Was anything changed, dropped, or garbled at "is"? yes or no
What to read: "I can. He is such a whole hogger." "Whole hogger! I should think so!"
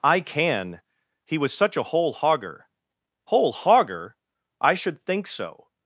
yes